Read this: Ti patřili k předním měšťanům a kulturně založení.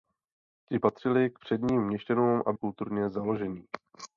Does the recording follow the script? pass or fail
pass